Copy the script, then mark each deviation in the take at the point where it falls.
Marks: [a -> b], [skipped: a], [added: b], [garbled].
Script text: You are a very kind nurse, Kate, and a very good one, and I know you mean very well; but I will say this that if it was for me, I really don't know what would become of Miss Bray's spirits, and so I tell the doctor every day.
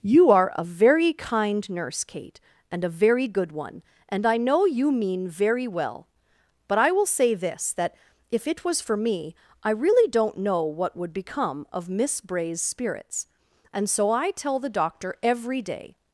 You are a very kind nurse, Kate, and a very good one, and I know you mean very well; but I will say this that if it was for me, I really don't know what would become of Miss Bray's spirits, and so I tell the doctor every day.